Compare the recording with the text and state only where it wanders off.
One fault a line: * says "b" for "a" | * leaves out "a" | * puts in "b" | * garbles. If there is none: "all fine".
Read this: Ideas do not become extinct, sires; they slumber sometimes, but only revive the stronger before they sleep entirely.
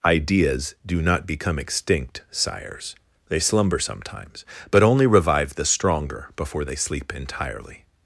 all fine